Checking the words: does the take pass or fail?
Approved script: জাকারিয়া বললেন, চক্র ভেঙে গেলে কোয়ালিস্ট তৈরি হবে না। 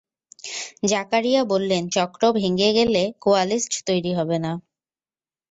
pass